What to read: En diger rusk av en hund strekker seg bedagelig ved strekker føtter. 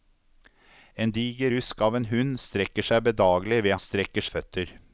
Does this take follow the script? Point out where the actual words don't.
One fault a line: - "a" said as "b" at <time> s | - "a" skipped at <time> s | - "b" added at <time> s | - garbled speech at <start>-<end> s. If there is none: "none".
none